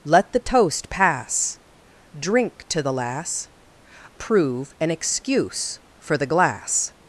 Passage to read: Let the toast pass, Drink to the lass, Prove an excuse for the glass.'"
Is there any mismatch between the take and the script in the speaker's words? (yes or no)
no